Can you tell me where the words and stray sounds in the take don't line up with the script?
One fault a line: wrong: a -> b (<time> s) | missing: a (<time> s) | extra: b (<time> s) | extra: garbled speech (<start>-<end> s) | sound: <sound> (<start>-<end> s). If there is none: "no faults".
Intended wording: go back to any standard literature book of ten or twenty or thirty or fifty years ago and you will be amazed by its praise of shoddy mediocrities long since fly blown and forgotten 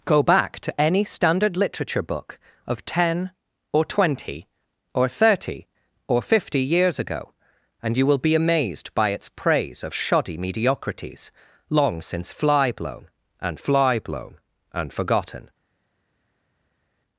extra: fly blown and (13.6 s)